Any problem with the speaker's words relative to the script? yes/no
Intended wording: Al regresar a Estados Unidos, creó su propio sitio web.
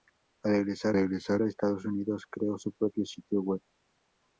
yes